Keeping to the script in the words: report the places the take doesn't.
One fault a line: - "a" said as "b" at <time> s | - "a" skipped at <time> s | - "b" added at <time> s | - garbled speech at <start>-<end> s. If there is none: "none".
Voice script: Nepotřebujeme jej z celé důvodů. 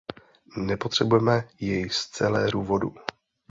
none